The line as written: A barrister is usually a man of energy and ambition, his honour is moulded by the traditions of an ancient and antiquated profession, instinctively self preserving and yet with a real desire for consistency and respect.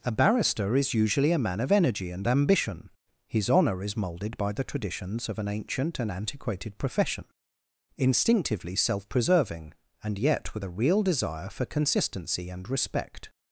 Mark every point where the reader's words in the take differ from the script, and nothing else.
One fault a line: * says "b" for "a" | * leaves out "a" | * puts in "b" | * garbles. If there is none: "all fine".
all fine